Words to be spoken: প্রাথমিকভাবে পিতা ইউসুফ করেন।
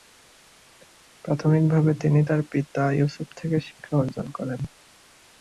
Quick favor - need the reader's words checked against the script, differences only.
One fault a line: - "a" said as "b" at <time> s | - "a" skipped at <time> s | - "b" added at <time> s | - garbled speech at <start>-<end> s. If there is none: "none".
- "তিনি তার" added at 2.0 s
- "থেকে শিক্ষা অর্জন" added at 3.4 s